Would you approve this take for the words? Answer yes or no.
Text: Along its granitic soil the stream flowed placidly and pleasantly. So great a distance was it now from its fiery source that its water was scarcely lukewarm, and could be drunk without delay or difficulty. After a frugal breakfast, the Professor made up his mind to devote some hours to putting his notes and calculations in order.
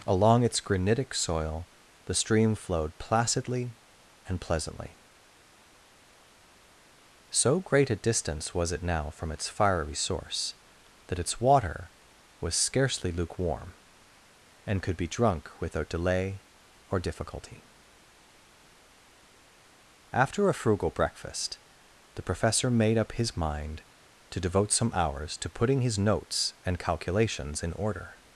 yes